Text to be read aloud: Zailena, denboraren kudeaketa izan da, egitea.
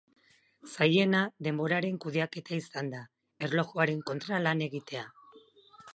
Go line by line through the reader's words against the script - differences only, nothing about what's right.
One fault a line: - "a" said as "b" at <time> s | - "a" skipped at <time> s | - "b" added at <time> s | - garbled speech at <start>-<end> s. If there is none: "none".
- "erlojuaren kontra lan" added at 3.5 s